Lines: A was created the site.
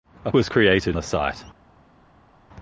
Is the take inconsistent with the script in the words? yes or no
no